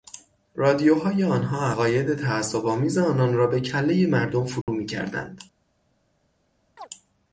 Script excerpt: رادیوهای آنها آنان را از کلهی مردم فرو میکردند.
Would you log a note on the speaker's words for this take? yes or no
yes